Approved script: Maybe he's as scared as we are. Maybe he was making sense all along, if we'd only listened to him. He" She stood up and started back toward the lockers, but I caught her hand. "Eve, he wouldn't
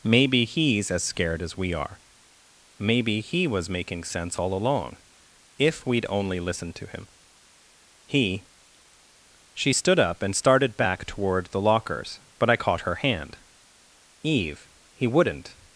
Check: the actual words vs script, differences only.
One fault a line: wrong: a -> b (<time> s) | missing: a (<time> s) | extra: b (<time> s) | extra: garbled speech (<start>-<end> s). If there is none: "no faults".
no faults